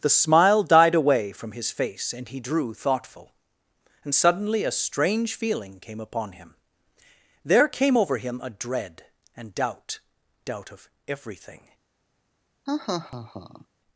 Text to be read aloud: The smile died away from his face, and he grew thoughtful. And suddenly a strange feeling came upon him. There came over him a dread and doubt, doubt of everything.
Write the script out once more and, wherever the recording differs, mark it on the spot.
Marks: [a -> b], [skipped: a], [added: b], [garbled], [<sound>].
The smile died away from his face, and he [grew -> drew] thoughtful. And suddenly a strange feeling came upon him. There came over him a dread and doubt, doubt of everything. [laugh]